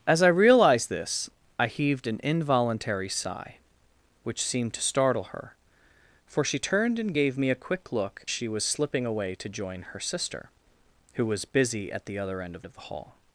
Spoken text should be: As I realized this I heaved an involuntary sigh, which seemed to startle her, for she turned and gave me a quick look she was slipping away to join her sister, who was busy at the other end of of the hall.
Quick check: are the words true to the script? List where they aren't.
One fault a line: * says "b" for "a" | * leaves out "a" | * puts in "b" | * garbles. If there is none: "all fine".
all fine